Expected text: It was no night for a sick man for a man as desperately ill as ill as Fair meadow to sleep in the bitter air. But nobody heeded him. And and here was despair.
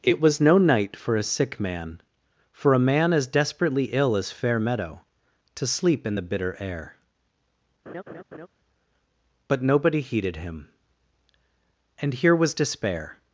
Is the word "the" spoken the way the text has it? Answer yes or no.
yes